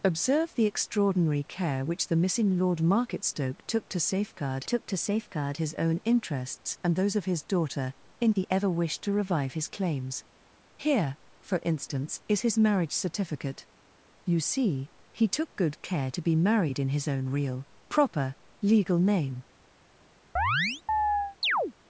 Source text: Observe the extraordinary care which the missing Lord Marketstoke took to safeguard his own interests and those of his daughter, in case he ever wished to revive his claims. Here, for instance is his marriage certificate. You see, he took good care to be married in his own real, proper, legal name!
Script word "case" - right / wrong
wrong